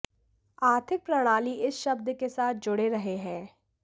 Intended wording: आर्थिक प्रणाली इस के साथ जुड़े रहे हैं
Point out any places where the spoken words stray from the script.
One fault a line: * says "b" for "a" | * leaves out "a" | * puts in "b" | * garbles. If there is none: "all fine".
* puts in "शब्द"